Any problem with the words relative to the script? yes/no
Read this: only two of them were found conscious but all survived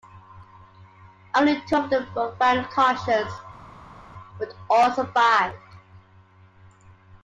no